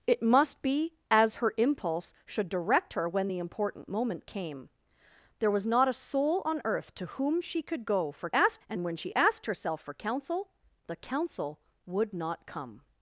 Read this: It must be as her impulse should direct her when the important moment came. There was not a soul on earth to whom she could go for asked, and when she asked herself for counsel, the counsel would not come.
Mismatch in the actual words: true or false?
false